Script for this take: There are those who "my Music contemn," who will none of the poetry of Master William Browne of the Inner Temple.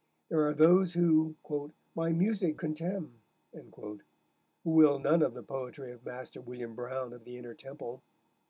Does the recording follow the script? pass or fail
pass